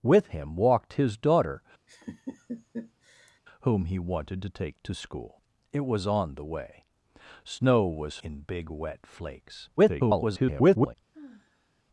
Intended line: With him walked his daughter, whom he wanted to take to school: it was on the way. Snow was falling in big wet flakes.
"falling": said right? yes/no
no